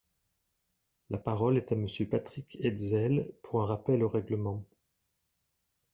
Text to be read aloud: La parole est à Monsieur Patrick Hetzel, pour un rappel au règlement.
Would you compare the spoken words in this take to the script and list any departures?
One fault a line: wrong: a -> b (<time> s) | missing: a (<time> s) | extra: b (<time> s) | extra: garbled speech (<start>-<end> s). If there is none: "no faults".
no faults